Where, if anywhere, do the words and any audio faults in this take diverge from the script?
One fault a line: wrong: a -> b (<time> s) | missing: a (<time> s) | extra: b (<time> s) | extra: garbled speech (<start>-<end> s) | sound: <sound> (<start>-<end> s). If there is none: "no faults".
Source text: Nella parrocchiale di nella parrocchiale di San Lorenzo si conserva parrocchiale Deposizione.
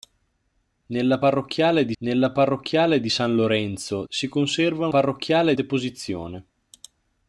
no faults